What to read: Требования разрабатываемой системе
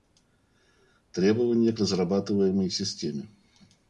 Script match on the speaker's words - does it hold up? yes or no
yes